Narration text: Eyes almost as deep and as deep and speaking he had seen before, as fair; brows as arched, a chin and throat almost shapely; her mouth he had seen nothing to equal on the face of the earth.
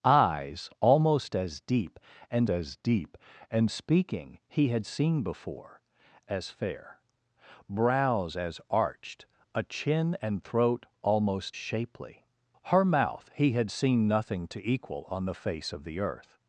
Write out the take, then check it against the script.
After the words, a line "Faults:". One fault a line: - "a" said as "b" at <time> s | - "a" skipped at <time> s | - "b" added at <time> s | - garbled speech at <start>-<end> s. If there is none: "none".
Eyes almost as deep and as deep and speaking he had seen before, as fair; brows as arched, a chin and throat almost shapely; her mouth he had seen nothing to equal on the face of the earth.
Faults:
none